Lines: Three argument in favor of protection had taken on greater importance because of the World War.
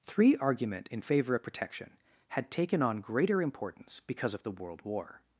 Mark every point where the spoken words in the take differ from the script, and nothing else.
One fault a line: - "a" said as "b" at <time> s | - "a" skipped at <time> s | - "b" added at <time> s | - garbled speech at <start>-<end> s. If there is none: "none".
none